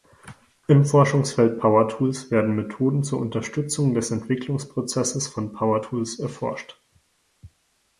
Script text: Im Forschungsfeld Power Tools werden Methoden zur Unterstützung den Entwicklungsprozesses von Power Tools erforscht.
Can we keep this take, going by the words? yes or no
no